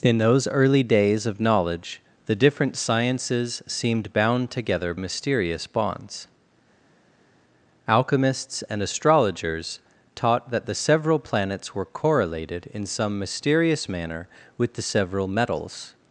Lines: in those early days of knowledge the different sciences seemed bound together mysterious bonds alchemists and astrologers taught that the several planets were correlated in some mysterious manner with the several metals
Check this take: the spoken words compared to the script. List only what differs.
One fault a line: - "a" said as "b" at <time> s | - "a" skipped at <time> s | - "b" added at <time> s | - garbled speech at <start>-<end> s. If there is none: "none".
none